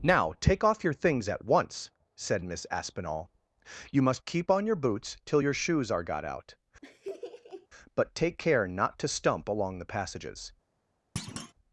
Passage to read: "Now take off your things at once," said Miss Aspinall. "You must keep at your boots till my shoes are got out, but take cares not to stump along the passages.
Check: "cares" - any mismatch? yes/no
yes